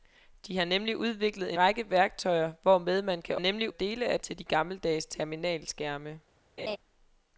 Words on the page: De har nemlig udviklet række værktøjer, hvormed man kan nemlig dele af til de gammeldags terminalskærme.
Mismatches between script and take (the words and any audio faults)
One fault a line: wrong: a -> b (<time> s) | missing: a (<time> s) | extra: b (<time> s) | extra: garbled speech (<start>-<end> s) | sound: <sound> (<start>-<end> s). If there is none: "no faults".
sound: laugh (6.6-6.8 s)